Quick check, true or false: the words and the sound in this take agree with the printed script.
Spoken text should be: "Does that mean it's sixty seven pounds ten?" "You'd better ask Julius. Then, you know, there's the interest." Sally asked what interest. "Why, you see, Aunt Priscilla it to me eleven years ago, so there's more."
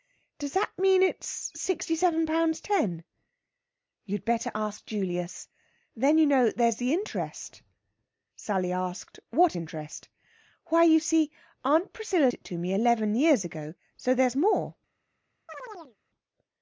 false